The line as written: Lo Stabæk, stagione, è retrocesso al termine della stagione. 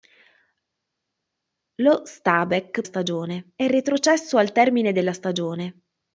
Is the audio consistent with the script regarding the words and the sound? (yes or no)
yes